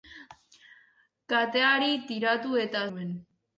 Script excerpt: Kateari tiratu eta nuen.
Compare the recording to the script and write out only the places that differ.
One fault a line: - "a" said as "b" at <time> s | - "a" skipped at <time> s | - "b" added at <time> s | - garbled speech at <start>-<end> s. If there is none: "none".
none